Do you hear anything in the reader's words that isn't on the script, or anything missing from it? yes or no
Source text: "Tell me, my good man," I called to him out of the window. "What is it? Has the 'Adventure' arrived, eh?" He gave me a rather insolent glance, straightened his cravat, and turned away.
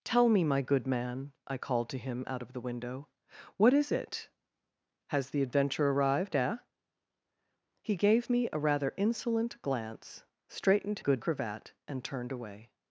yes